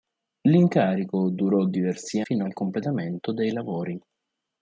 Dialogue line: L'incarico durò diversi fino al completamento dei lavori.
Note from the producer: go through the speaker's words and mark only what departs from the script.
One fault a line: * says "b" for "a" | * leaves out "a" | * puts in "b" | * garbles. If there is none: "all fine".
all fine